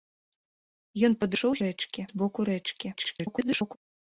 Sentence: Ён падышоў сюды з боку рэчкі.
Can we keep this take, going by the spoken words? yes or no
no